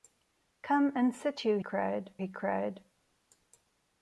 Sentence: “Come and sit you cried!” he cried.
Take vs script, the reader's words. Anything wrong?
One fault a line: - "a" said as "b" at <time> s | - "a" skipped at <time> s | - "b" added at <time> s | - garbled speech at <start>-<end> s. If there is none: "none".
none